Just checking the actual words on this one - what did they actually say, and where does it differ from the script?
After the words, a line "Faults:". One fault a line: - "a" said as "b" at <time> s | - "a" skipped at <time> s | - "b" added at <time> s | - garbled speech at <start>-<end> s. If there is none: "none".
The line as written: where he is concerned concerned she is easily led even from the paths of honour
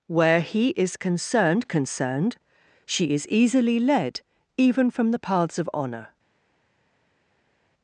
where he is concerned concerned she is easily led even from the paths of honour
Faults:
none